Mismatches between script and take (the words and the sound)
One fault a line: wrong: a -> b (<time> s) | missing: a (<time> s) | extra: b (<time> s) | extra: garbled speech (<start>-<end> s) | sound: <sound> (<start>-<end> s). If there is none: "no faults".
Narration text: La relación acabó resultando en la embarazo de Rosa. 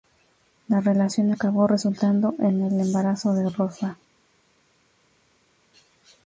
wrong: la -> el (2.6 s)